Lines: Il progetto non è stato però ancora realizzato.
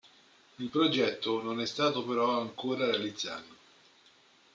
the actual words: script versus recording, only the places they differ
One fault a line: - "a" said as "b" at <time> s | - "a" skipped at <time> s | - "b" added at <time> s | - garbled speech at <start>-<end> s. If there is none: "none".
none